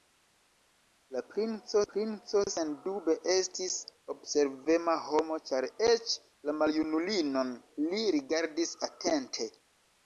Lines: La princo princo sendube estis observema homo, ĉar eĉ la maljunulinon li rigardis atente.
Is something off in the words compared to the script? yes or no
no